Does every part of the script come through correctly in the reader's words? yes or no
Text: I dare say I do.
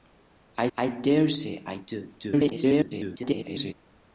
no